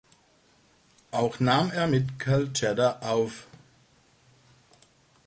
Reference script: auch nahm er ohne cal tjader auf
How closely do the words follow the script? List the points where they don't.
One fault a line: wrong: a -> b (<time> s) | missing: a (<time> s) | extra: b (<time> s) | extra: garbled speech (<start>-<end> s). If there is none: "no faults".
wrong: ohne -> mit (1.9 s)